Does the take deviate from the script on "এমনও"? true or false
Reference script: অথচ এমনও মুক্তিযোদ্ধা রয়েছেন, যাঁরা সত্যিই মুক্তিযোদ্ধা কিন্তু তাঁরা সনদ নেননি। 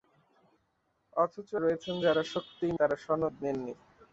true